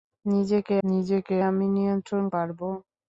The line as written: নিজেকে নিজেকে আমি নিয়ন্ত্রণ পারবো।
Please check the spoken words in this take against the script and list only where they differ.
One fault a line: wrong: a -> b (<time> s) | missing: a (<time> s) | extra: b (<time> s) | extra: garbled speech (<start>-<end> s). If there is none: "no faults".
no faults